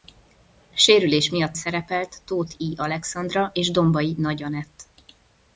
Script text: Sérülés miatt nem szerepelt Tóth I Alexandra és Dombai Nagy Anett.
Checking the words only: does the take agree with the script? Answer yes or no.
no